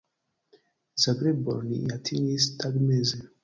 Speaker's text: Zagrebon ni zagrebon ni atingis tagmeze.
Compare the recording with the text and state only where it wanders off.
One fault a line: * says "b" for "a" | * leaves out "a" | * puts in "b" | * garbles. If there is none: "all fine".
* leaves out "zagrebon ni"